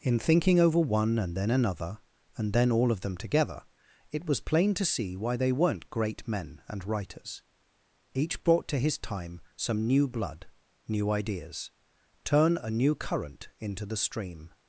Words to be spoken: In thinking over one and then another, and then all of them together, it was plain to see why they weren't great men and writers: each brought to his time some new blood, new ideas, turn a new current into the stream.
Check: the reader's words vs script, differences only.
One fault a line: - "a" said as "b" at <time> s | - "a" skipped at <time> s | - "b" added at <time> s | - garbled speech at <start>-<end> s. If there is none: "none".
none